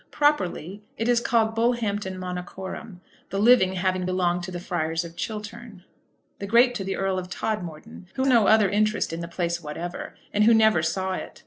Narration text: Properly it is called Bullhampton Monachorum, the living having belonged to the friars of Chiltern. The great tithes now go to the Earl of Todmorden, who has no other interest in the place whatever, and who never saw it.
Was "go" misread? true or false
true